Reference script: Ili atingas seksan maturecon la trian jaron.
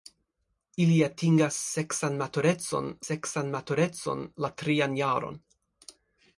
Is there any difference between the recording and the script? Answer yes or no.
yes